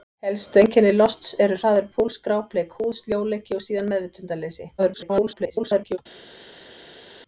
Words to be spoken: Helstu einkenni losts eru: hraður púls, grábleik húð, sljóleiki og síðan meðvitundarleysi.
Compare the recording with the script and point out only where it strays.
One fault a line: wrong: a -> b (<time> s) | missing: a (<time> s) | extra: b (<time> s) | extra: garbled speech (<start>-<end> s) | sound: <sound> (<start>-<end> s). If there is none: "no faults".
extra: garbled speech (4.8-6.0 s)